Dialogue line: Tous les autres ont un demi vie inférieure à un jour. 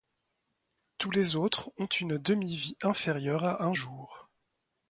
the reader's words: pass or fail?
fail